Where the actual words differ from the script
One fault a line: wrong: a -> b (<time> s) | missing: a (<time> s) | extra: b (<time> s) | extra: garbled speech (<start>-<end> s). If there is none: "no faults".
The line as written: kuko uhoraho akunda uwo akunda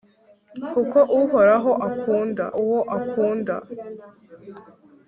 no faults